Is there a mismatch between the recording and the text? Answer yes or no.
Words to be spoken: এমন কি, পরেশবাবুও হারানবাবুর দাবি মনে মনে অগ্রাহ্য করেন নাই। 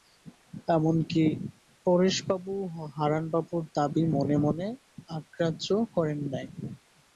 no